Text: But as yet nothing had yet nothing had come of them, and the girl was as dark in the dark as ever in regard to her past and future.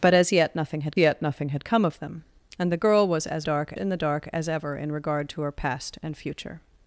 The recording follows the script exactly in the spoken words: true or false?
true